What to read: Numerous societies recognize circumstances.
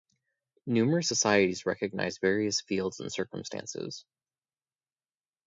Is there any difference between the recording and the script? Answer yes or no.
yes